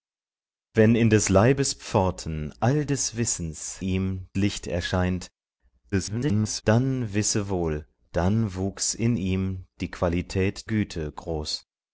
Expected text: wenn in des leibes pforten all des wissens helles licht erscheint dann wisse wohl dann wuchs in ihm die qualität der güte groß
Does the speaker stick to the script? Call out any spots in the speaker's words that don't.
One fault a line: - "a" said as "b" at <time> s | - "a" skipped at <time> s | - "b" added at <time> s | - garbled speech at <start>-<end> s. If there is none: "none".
- "helles" said as "ihm" at 3.8 s
- garbled speech at 5.9-6.6 s
- "der" skipped at 10.7 s